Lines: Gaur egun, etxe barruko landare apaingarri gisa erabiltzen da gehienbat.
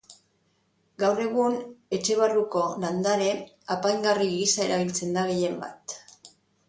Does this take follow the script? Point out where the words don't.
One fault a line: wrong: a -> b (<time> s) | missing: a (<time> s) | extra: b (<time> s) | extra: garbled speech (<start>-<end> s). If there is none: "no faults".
no faults